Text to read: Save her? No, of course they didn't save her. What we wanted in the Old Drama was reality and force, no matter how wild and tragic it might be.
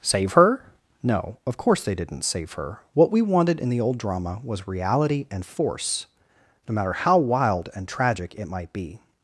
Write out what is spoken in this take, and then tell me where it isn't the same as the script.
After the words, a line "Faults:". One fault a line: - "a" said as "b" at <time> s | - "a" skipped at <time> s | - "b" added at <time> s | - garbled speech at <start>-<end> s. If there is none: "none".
Save her? No, of course they didn't save her. What we wanted in the Old Drama was reality and force, no matter how wild and tragic it might be.
Faults:
none